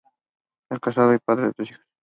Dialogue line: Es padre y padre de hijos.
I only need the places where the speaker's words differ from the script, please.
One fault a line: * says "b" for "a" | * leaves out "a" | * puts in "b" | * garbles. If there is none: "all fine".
* says "casado" for "padre"
* puts in "tres"